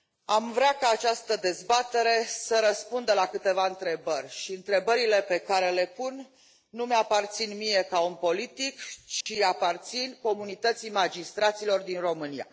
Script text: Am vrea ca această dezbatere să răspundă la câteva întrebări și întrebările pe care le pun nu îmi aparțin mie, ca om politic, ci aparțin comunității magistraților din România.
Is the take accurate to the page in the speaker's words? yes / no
yes